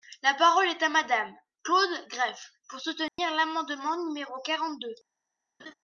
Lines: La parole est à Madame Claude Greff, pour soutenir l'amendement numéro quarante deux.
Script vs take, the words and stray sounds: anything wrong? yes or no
yes